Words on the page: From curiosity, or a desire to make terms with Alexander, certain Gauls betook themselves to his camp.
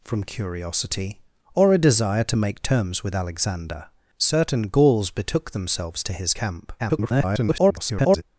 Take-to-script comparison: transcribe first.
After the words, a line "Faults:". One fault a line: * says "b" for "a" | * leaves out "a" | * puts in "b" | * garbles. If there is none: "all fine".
From curiosity, or a desire to make terms with Alexander, certain Gauls betook themselves to his camp. [garbled]
Faults:
* garbles